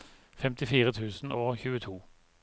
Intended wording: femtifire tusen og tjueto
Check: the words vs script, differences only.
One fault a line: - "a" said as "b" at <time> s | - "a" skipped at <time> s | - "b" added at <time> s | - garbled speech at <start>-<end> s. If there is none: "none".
none